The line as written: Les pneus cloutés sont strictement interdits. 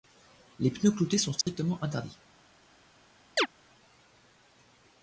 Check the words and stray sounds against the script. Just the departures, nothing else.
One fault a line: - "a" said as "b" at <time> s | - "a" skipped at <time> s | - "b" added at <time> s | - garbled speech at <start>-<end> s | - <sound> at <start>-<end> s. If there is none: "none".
- dropout at 1.4-1.5 s
- chirp at 3.4-3.5 s